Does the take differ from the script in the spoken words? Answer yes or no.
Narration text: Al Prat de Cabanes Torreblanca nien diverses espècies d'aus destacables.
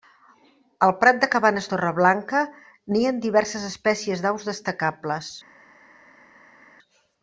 no